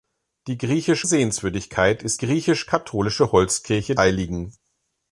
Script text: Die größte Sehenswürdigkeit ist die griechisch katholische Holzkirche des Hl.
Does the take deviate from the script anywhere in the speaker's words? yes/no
yes